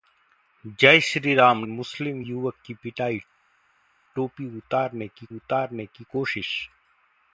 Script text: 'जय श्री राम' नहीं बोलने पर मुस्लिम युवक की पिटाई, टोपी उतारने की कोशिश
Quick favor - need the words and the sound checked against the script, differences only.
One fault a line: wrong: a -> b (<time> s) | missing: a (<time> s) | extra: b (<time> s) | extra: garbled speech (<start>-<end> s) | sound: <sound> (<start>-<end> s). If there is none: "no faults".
missing: नहीं बोलने पर (1.6 s)
extra: उतारने की (5.4 s)